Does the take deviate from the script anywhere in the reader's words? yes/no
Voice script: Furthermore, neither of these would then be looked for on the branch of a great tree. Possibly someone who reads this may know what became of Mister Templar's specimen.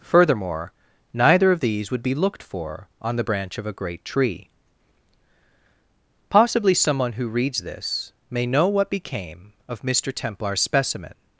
yes